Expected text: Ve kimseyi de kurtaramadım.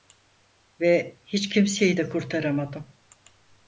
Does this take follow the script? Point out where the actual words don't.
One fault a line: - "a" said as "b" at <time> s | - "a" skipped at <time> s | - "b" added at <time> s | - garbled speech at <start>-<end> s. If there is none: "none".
- "hiç" added at 1.2 s